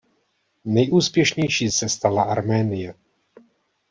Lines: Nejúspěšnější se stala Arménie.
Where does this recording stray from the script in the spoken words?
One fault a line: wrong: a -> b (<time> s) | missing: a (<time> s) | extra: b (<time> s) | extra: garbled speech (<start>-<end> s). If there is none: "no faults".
no faults